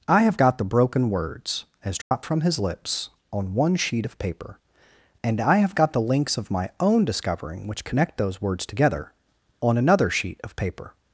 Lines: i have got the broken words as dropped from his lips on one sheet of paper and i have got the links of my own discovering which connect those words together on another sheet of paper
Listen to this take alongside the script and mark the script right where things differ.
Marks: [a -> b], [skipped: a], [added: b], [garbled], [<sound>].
i have got the broken words as dropped [dropout] from his lips on one sheet of paper and i have got the links of my own discovering which connect those words together on another sheet of paper